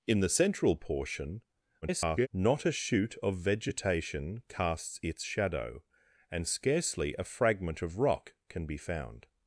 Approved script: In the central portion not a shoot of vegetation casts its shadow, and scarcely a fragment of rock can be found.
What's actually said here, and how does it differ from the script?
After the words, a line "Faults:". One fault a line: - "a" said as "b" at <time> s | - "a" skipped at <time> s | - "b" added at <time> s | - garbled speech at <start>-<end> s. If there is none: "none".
In the central portion [garbled] not a shoot of vegetation casts its shadow, and scarcely a fragment of rock can be found.
Faults:
- garbled speech at 1.8-2.3 s